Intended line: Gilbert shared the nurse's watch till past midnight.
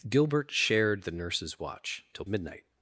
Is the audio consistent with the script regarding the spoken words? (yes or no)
no